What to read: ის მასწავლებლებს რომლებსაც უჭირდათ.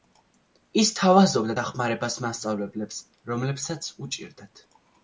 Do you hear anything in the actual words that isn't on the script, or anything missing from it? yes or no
yes